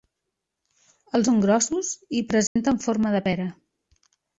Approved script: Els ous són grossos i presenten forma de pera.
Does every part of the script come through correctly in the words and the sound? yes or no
no